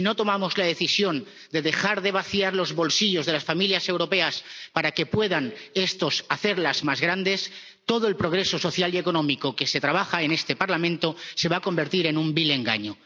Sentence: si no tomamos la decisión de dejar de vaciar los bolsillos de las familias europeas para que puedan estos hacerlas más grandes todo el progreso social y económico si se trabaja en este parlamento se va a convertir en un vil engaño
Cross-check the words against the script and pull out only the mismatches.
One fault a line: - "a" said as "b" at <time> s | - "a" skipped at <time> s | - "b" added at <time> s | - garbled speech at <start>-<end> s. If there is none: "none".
- "si" said as "que" at 9.6 s